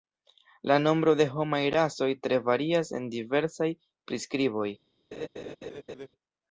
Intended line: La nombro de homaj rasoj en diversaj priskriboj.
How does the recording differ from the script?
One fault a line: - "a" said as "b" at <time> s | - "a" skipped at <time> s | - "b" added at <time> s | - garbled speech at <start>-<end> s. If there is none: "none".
- "tre varias" added at 2.2 s